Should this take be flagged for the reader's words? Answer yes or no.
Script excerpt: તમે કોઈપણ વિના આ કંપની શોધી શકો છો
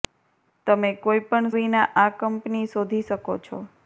no